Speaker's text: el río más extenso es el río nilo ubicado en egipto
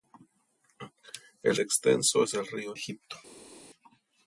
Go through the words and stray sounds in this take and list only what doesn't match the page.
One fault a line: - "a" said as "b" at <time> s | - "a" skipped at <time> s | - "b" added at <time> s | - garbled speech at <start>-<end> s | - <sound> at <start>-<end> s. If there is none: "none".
- "río más" skipped at 1.6 s
- "nilo ubicado en" skipped at 2.7 s